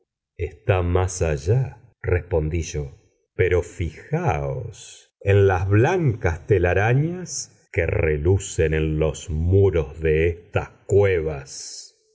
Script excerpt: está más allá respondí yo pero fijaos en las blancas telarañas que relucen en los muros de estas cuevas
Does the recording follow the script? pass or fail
pass